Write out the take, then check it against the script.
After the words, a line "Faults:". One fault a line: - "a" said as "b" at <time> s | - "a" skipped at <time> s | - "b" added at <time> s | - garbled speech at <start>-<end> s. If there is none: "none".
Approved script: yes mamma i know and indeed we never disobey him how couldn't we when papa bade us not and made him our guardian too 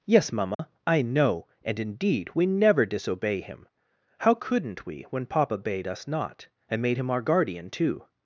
yes mamma i know and indeed we never disobey him how couldn't we when papa bade us not and made him our guardian too
Faults:
none